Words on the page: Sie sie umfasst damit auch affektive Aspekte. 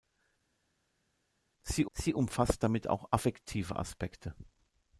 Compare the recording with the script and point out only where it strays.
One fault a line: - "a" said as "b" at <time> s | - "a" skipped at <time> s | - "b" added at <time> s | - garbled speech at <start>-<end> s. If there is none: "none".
none